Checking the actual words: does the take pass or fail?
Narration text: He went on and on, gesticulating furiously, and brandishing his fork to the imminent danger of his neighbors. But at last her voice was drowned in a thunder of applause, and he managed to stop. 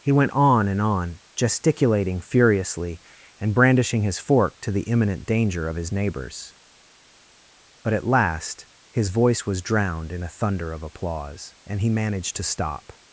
fail